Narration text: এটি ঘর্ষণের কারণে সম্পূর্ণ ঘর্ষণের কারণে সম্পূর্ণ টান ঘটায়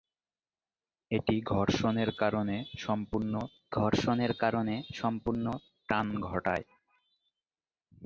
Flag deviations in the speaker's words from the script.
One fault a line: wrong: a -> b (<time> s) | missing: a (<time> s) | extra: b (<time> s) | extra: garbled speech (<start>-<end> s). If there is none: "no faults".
no faults